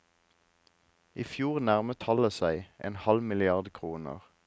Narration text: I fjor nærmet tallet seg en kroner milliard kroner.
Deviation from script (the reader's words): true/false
true